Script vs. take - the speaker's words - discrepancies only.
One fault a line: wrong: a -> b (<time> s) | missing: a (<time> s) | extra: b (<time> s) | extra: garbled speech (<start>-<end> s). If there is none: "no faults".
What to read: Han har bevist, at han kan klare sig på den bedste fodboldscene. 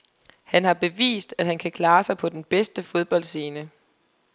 no faults